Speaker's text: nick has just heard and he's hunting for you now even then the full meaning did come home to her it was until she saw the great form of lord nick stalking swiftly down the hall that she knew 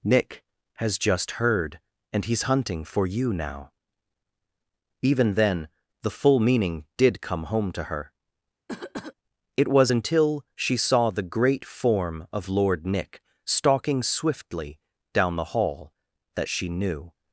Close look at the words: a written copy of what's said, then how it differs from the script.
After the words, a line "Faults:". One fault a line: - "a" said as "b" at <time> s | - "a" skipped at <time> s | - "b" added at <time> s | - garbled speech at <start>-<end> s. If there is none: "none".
nick has just heard and he's hunting for you now even then the full meaning did come home to her it was until she saw the great form of lord nick stalking swiftly down the hall that she knew
Faults:
none